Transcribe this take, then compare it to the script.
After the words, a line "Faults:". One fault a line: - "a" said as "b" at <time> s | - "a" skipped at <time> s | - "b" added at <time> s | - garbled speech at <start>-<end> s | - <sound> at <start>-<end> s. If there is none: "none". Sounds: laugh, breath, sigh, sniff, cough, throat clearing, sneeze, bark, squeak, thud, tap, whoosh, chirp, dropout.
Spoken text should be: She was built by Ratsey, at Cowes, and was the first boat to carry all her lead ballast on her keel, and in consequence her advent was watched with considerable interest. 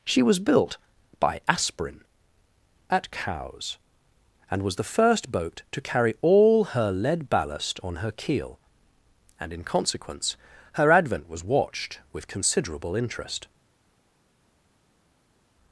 She was built by Aspirin, at Cowes, and was the first boat to carry all her lead ballast on her keel, and in consequence her advent was watched with considerable interest.
Faults:
- "Ratsey" said as "Aspirin" at 1.5 s